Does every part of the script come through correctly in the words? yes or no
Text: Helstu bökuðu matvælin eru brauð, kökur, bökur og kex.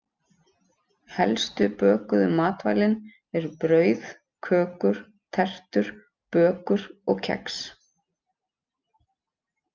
no